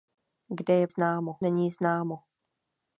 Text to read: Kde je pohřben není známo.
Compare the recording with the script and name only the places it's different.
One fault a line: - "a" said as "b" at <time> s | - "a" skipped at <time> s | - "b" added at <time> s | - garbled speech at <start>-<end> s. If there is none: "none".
- "pohřben" said as "známo" at 0.9 s